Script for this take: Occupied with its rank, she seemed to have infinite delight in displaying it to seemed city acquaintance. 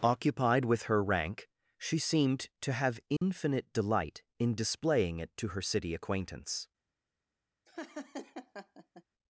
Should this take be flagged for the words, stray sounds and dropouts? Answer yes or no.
yes